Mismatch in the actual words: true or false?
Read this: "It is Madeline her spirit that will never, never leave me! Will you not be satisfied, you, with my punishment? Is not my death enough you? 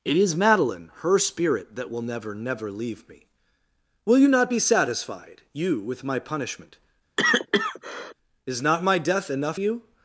false